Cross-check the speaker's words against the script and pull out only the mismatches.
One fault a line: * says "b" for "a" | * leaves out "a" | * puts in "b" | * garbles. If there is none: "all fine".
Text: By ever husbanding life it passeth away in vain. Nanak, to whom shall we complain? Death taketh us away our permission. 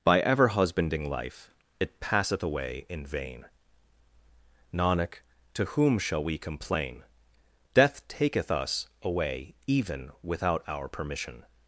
* puts in "even without"